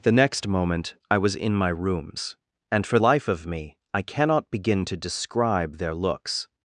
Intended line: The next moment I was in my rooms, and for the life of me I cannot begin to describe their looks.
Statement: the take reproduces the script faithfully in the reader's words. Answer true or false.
false